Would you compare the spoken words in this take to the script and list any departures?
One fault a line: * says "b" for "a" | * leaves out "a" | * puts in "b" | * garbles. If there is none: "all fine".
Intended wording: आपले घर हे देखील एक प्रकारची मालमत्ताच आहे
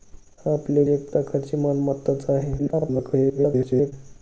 * leaves out "घर हे देखील"
* garbles